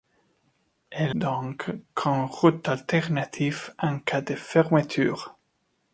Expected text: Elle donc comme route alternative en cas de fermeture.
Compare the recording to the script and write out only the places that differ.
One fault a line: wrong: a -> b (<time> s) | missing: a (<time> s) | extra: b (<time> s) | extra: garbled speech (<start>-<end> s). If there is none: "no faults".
no faults